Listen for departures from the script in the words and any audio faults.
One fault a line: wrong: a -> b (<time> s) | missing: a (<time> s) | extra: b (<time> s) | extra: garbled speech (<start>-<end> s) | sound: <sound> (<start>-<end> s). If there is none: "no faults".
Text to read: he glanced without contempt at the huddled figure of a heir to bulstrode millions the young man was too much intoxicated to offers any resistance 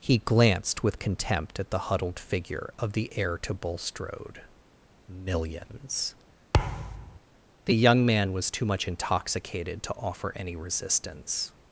wrong: without -> with (0.8 s)
wrong: a -> the (2.9 s)
sound: thud (6.5-7.2 s)
wrong: offers -> offer (9.9 s)